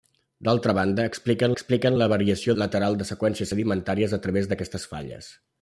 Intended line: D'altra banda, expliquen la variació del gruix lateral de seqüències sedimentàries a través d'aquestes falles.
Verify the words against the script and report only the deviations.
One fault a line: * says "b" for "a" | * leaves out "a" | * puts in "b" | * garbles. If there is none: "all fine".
* puts in "expliquen"
* leaves out "del gruix"